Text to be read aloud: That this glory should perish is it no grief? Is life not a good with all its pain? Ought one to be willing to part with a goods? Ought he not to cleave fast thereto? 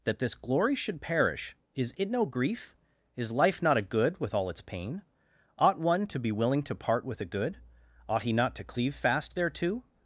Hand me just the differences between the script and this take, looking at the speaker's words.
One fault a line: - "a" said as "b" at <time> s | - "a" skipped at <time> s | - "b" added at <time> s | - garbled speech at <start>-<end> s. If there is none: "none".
- "goods" said as "good" at 7.2 s